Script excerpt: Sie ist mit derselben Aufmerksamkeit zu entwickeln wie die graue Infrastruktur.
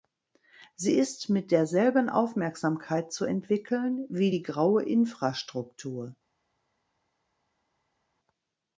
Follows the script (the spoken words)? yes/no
yes